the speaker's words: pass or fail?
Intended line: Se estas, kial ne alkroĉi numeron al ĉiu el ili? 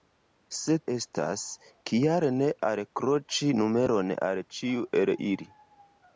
pass